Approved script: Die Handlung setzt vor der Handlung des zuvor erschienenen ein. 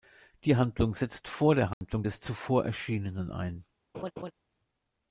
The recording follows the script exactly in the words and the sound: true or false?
false